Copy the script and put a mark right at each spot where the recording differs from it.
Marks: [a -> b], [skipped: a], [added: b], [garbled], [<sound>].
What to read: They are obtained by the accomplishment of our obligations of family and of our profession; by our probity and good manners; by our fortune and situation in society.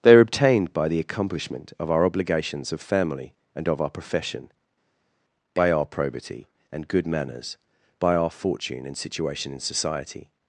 They are obtained by the accomplishment of our obligations of family and of our profession; by our probity and good manners; by our fortune and situation in society.